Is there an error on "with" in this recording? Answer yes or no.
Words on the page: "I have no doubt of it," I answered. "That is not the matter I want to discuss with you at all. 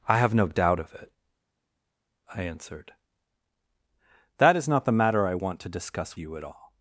yes